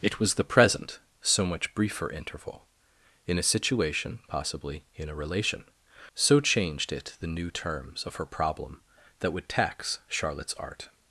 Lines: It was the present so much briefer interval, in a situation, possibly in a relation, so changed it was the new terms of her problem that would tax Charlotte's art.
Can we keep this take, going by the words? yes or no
no